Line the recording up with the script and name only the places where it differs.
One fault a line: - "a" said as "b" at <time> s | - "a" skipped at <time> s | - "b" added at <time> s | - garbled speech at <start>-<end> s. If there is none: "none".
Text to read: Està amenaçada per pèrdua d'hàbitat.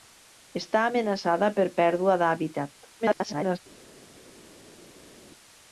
- garbled speech at 3.0-3.6 s